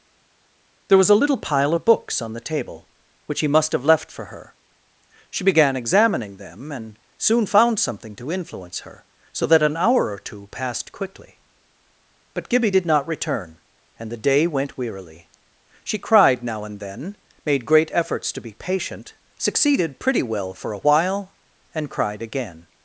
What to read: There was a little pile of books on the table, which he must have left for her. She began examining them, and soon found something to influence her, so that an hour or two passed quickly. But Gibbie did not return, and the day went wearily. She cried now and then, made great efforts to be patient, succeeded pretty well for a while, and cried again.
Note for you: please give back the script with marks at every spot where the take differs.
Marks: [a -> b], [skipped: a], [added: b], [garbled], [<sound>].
There was a little pile of books on the table, which he must have left for her. She began examining them, and soon found something to influence her, so that an hour or two passed quickly. But Gibbie did not return, and the day went wearily. She cried now and then, made great efforts to be patient, succeeded pretty well for a while, and cried again.